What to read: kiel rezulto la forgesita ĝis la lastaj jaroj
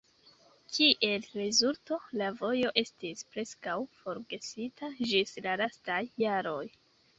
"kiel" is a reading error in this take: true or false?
false